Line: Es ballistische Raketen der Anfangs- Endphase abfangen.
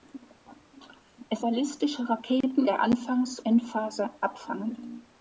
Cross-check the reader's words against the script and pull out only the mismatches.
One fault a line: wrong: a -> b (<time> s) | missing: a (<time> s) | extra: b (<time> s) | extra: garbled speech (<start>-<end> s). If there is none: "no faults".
no faults